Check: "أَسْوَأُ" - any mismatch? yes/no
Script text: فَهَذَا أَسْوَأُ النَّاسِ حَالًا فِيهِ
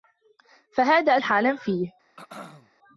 yes